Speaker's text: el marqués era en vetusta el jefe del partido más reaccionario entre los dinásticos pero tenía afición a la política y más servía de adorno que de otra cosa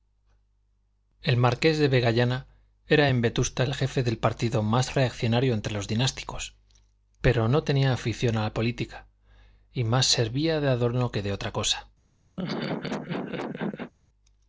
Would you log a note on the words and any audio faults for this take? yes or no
yes